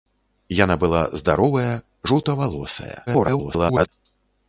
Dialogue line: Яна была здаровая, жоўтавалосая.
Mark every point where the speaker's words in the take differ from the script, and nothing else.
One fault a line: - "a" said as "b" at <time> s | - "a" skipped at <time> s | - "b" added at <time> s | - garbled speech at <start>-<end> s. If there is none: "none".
- garbled speech at 3.1-3.9 s